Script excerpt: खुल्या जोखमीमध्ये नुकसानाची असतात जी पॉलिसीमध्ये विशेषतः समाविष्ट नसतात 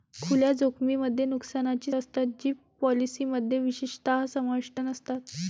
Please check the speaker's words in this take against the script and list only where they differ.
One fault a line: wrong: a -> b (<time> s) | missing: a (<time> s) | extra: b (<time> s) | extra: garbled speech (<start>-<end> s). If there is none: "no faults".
no faults